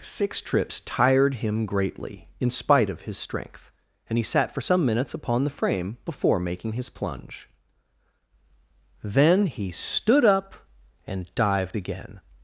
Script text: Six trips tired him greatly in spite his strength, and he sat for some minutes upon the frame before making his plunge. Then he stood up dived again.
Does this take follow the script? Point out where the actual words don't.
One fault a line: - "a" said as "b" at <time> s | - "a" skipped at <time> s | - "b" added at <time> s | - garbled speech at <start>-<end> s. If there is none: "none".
- "of" added at 2.9 s
- "and" added at 11.0 s